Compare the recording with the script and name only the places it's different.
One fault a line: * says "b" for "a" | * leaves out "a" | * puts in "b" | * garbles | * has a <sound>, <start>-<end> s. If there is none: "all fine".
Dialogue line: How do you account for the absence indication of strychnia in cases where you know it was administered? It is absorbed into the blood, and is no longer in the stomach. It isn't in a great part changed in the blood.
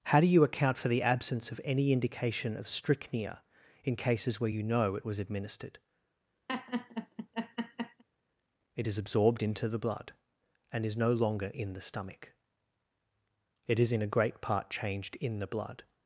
* puts in "of any"
* has a laugh, 6.5-8.0 s
* says "is" for "isn't"